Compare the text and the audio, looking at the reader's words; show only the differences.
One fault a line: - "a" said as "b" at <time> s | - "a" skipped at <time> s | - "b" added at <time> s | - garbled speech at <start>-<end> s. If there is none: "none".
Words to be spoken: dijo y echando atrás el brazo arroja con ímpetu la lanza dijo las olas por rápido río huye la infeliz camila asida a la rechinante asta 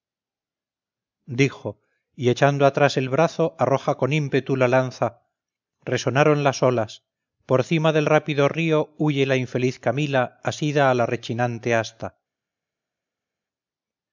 - "dijo" said as "resonaron" at 5.8 s
- "cima del" added at 7.6 s